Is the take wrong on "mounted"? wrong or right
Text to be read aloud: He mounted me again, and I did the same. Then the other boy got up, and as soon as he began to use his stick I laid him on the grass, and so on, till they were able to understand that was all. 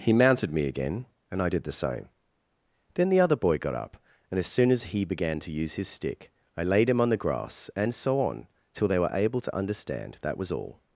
right